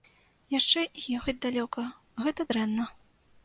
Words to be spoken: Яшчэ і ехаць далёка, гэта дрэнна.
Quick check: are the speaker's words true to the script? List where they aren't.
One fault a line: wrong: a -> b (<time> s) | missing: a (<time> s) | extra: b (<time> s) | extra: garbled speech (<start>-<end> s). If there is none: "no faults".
no faults